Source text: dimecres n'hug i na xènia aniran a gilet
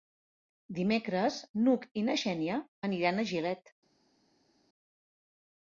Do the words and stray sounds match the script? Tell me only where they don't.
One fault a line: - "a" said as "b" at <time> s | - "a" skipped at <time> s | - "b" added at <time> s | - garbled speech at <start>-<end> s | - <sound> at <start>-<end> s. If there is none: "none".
none